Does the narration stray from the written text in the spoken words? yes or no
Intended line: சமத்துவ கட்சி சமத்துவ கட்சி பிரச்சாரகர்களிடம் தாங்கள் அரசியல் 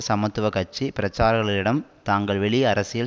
yes